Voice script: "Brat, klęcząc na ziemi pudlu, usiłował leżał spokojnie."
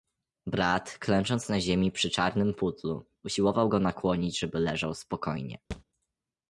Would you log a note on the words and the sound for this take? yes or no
yes